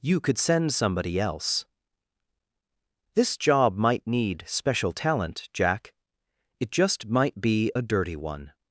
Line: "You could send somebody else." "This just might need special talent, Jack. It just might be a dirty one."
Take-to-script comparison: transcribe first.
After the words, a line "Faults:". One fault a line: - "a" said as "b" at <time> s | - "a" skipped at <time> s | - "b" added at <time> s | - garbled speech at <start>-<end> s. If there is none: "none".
"You could send somebody else." "This job might need special talent, Jack. It just might be a dirty one."
Faults:
- "just" said as "job" at 3.4 s